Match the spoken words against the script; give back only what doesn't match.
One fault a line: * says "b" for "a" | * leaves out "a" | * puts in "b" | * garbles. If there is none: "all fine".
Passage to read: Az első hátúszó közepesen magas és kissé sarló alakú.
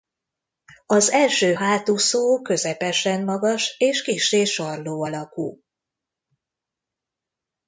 all fine